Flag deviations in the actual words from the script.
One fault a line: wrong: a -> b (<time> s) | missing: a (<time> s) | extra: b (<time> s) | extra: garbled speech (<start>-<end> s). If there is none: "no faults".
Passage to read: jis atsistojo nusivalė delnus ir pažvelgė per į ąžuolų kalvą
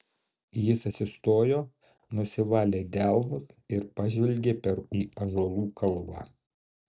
no faults